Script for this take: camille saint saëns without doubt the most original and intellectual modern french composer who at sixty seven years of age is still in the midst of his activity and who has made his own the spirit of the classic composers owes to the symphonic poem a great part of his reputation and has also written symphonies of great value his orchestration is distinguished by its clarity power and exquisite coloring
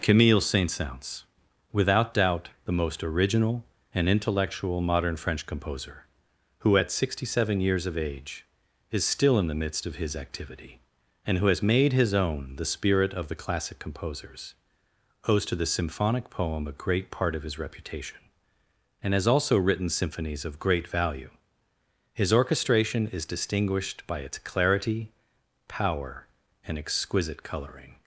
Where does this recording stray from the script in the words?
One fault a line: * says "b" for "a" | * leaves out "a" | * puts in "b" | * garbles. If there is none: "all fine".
all fine